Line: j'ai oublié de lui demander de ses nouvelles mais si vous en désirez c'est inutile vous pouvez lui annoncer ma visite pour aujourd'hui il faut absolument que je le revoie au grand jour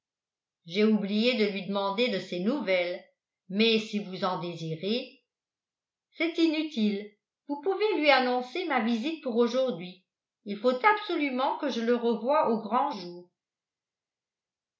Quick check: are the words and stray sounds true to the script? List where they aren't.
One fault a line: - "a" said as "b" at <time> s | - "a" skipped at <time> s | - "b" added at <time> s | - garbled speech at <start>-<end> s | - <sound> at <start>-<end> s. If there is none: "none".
none